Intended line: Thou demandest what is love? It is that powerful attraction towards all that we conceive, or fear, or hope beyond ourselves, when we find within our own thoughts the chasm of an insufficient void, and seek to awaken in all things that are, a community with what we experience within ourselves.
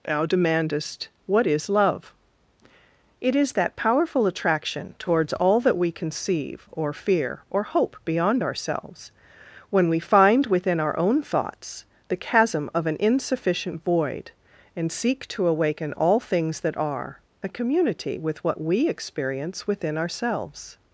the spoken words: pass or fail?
fail